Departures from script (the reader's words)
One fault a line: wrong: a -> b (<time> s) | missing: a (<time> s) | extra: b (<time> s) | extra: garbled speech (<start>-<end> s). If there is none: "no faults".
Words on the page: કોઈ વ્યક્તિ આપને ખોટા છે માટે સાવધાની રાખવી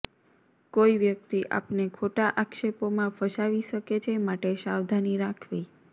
extra: આક્ષેપોમાં ફસાવી શકે (2.4 s)